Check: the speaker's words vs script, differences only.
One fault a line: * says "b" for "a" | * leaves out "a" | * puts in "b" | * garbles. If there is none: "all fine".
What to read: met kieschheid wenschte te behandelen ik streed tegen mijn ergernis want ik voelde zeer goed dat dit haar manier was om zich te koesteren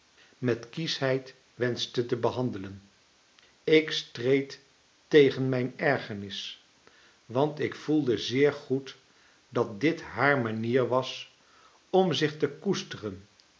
all fine